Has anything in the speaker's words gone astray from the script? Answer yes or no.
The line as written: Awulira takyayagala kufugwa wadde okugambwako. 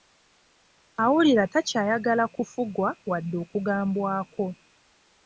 no